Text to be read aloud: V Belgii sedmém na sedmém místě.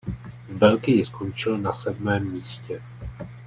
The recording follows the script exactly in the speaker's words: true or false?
false